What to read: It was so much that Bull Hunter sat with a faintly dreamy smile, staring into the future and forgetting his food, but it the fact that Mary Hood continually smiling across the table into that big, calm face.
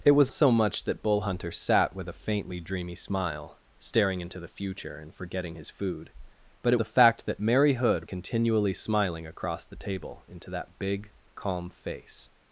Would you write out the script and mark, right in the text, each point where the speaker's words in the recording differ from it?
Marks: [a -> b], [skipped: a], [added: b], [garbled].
It was so much that Bull Hunter sat with a faintly dreamy smile, staring into the future and forgetting his food, but it the fact that Mary Hood continually smiling across the table into that big, calm face.